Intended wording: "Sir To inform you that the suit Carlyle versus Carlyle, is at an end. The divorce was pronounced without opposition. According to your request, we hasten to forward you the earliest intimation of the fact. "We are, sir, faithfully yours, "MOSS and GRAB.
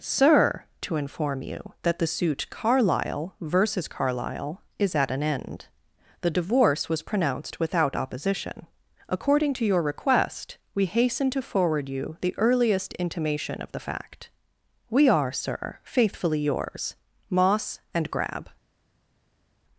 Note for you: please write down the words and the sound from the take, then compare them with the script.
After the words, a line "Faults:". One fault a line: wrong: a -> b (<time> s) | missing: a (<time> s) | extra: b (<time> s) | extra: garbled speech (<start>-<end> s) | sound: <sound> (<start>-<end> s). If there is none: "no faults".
"Sir To inform you that the suit Carlyle versus Carlyle, is at an end. The divorce was pronounced without opposition. According to your request, we hasten to forward you the earliest intimation of the fact. "We are, sir, faithfully yours, "MOSS and GRAB.
Faults:
no faults